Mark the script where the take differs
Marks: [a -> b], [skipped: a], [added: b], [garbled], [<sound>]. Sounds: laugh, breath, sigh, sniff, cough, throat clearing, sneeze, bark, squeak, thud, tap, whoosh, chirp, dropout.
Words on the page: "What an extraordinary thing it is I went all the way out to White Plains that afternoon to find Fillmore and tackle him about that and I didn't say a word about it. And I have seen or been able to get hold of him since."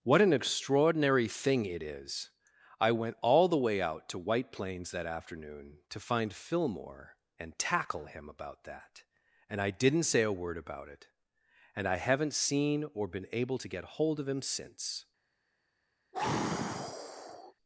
"What an extraordinary thing it is I went all the way out to White Plains that afternoon to find Fillmore and tackle him about that and I didn't say a word about it. And I [have -> haven't] seen or been able to get hold of him since." [sigh]